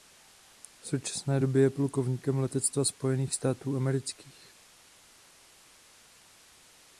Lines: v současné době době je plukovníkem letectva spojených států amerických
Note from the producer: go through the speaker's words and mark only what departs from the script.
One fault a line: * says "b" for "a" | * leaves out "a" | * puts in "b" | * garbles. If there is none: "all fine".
* leaves out "době"